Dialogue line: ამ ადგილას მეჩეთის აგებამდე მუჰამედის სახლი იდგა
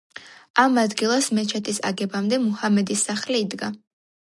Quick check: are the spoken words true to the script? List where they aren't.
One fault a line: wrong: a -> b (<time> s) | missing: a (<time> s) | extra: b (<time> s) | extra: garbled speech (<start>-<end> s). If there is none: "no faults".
no faults